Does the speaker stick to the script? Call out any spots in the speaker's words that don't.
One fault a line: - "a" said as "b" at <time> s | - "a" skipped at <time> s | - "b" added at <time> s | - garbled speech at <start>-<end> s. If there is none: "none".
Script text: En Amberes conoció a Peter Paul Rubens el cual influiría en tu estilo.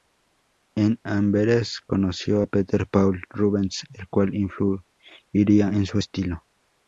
- "tu" said as "su" at 5.9 s